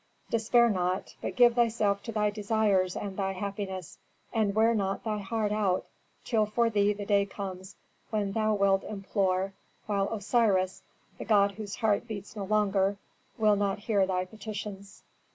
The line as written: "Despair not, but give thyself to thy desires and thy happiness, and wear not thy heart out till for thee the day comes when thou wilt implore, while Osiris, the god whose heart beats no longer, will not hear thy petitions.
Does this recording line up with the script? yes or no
yes